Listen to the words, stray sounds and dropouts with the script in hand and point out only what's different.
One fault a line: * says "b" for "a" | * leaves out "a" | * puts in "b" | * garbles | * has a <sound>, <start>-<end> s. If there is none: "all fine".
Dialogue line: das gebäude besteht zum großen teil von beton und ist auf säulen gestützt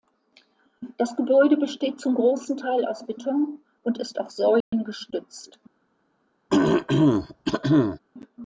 * says "aus" for "von"
* has a dropout, 4.6-4.7 s
* has a throat clearing, 6.5-8.0 s